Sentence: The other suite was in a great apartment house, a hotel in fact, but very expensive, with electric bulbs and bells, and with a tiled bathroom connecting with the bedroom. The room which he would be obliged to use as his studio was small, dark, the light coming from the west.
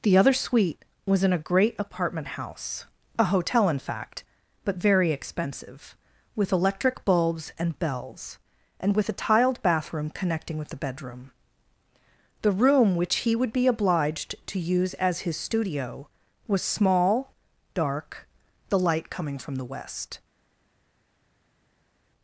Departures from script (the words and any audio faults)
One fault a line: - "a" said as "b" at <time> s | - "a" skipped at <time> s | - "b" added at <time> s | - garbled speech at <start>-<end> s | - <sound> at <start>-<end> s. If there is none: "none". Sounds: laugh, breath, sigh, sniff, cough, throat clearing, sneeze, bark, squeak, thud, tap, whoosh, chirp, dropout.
none